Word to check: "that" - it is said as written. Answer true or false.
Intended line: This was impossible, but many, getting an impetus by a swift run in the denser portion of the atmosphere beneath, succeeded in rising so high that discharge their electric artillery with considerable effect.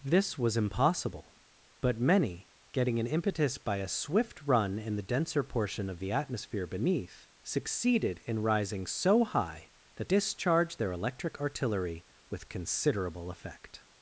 true